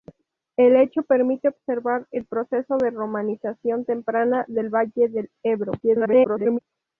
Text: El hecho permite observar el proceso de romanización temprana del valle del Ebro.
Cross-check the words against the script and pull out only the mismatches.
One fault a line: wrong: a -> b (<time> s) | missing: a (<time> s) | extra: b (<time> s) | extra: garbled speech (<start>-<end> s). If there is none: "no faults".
extra: garbled speech (5.8-6.6 s)